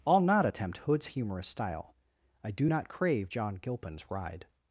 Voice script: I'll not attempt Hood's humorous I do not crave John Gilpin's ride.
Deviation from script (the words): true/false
true